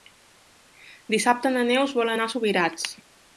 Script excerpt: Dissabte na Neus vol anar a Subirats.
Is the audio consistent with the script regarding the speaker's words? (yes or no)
yes